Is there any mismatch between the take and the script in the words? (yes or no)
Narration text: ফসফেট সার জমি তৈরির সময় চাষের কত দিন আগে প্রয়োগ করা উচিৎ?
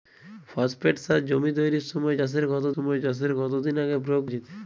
yes